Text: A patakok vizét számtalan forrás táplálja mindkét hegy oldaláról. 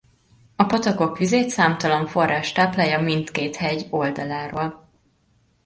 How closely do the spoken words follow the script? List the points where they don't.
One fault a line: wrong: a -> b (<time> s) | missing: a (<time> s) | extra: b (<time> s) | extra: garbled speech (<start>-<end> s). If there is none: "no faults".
no faults